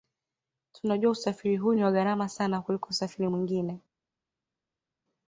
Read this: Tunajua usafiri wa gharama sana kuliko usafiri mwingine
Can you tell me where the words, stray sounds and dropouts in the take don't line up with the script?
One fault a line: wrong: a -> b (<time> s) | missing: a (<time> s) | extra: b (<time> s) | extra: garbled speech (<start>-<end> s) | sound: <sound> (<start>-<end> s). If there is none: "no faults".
extra: huu ni (1.6 s)